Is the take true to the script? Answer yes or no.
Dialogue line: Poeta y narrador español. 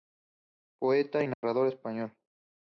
yes